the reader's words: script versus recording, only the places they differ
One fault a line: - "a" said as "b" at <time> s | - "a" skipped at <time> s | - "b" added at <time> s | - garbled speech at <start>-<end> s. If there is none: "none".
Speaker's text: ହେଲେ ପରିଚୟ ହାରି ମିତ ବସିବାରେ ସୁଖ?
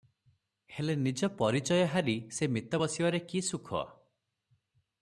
- "ନିଜ" added at 1.0 s
- "ସେ" added at 2.3 s
- "କି" added at 3.3 s